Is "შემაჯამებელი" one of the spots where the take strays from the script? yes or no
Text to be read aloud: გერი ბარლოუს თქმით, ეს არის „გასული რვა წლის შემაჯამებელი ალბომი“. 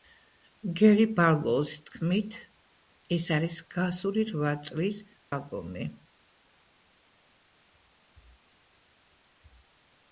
yes